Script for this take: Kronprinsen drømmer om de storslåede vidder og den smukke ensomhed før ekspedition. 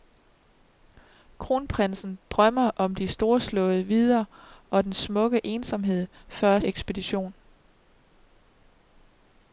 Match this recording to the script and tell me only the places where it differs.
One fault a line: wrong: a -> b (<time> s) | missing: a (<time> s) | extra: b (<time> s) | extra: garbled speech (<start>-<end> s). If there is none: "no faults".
no faults